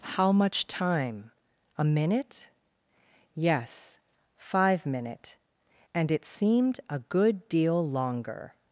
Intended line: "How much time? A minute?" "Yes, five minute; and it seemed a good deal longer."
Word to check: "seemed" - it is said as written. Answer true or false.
true